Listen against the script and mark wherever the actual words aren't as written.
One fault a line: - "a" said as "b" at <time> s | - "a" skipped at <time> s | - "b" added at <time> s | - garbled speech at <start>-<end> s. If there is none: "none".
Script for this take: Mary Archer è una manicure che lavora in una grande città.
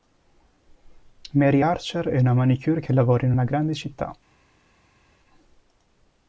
none